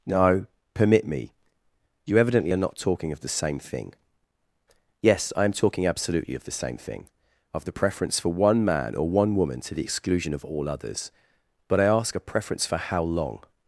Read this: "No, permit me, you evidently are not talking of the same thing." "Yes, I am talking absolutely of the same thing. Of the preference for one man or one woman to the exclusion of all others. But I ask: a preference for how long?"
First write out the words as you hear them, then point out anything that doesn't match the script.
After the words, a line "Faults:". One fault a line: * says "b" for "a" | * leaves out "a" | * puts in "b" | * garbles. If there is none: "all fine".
"No, permit me, you evidently are not talking of the same thing." "Yes, I am talking absolutely of the same thing. Of the preference for one man or one woman to the exclusion of all others. But I ask: a preference for how long?"
Faults:
all fine